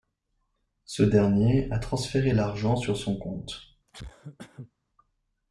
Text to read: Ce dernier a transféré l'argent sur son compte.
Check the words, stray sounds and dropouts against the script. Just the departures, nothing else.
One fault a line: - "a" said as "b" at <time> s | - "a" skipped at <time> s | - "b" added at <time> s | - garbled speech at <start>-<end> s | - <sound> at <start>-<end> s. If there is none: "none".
- cough at 3.9-4.7 s